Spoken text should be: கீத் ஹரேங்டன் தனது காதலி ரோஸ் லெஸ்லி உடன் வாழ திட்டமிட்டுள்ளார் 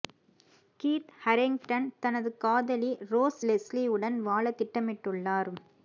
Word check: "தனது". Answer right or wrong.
right